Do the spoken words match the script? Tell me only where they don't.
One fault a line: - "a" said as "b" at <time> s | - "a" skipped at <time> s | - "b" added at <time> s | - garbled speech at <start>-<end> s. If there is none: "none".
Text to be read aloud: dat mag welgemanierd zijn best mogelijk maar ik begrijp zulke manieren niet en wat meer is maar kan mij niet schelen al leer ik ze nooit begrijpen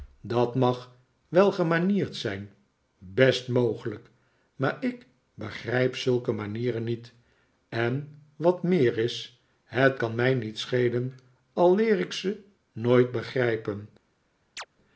- "maar" said as "het" at 9.6 s